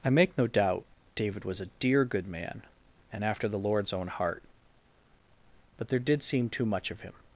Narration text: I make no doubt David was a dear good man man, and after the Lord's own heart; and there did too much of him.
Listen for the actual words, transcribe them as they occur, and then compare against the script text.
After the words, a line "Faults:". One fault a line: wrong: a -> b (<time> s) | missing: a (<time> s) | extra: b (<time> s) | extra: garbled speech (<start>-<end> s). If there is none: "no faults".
I make no doubt David was a dear good man, and after the Lord's own heart; but there did seem too much of him.
Faults:
missing: man (2.6 s)
wrong: and -> but (5.8 s)
extra: seem (6.2 s)